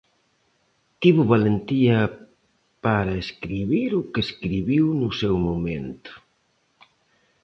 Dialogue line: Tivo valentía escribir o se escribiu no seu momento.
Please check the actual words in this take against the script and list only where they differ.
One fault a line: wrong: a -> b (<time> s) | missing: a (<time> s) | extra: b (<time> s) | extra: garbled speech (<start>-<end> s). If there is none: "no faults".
extra: para (2.9 s)
wrong: se -> que (4.1 s)